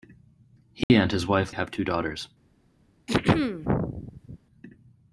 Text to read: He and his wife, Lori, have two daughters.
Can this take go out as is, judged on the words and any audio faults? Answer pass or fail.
fail